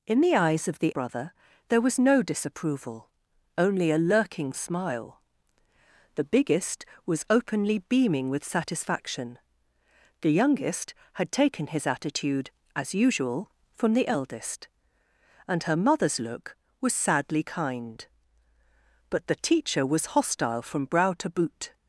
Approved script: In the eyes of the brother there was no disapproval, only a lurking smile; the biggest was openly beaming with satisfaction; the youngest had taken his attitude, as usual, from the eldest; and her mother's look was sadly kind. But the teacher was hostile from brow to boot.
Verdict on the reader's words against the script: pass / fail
pass